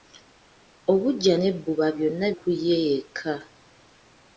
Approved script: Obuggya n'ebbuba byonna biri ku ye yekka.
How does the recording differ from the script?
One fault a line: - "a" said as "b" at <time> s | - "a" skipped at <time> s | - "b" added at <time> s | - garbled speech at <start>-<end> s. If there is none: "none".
- "biri" skipped at 2.3 s